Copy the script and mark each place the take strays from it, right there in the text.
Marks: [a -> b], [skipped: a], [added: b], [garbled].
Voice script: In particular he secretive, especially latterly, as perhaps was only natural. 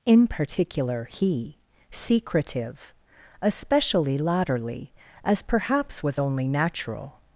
In particular he secretive, especially latterly, as perhaps was only natural.